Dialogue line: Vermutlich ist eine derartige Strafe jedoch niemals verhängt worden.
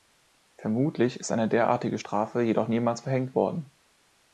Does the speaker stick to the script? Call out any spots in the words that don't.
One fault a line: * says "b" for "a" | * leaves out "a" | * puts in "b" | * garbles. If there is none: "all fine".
all fine